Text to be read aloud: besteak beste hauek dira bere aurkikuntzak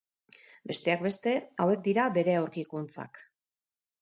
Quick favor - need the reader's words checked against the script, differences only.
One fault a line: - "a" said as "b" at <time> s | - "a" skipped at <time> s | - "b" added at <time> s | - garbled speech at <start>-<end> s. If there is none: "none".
none